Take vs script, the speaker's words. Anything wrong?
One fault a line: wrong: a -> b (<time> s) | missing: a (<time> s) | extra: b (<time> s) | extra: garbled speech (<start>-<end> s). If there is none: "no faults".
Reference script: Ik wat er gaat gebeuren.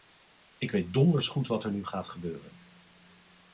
extra: weet donders goed (0.7 s)
extra: nu (1.7 s)